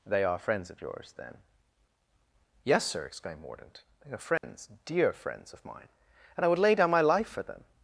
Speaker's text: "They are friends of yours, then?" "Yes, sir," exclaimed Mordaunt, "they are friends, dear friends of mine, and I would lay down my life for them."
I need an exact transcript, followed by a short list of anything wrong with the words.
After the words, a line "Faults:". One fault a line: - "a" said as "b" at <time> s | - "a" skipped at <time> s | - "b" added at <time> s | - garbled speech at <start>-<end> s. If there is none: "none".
"They are friends of yours, then?" "Yes, sir," exclaimed Mordaunt, "they are friends, dear friends of mine, and I would lay down my life for them."
Faults:
none